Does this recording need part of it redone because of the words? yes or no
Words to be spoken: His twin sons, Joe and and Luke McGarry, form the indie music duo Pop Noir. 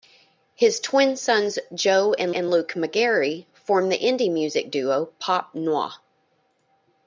no